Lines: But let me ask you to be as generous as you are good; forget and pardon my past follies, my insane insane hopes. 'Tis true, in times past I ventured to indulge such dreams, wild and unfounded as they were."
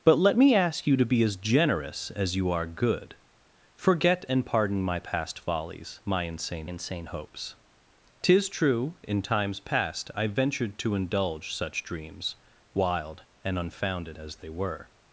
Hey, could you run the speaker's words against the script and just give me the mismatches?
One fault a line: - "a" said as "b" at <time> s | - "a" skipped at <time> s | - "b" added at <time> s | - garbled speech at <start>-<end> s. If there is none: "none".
none